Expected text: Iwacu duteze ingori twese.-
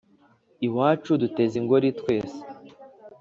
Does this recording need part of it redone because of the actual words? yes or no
no